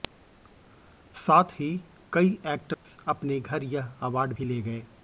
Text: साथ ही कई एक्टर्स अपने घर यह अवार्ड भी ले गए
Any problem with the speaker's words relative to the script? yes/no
no